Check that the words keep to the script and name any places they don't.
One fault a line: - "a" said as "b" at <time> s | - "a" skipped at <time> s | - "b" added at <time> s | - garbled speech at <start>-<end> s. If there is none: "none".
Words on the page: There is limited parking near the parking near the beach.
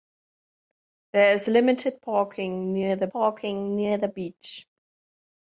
none